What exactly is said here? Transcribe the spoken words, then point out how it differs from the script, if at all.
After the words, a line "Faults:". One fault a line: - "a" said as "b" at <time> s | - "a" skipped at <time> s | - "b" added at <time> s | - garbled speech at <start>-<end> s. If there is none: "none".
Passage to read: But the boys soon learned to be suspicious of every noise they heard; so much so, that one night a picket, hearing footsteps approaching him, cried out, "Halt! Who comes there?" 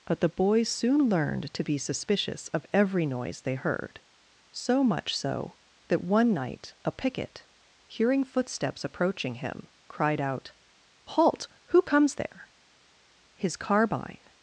But the boys soon learned to be suspicious of every noise they heard; so much so, that one night a picket, hearing footsteps approaching him, cried out, "Halt! Who comes there?" His carbine
Faults:
- "His carbine" added at 13.3 s